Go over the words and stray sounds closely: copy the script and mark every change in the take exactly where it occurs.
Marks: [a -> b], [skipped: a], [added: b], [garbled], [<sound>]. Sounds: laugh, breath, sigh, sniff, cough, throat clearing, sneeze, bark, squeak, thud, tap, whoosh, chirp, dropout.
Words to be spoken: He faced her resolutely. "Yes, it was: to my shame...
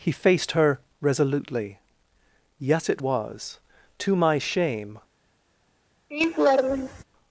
He faced her resolutely. "Yes, it was: to my shame... [laugh]